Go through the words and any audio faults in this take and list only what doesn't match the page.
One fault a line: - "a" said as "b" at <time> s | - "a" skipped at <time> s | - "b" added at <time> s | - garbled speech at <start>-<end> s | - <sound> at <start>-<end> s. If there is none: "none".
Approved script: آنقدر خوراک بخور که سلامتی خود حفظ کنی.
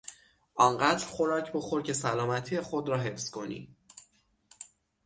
- "را" added at 2.9 s